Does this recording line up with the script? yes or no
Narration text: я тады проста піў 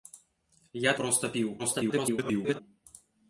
no